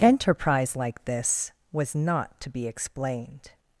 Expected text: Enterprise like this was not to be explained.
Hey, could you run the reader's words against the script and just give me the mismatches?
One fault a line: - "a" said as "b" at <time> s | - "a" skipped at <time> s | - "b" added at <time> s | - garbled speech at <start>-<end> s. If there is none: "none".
none